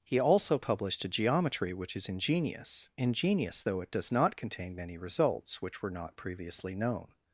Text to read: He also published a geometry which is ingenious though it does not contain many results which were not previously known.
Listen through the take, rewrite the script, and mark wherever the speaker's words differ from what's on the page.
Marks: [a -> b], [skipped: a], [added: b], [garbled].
He also published a geometry which is ingenious [added: ingenious] though it does not contain many results which were not previously known.